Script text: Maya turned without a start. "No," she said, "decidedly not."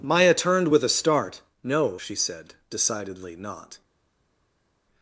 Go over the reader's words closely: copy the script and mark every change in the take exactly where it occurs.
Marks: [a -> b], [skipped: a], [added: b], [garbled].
Maya turned [without -> with] a start. "No," she said, "decidedly not."